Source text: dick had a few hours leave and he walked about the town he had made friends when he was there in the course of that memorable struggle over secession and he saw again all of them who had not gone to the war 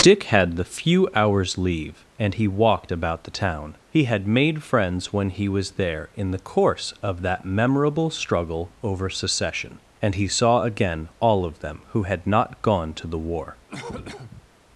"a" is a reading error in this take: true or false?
true